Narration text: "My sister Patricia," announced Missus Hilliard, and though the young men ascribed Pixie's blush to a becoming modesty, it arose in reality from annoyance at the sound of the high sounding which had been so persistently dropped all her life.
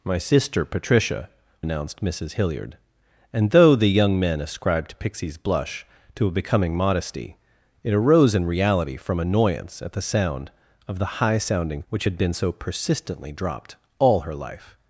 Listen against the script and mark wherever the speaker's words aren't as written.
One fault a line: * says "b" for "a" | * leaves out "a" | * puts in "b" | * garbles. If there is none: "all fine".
all fine